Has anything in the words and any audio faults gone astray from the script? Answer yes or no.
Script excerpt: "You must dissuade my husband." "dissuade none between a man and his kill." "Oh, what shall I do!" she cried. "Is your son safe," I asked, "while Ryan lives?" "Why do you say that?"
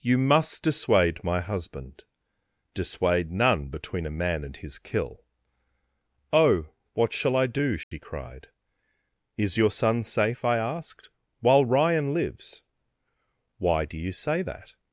yes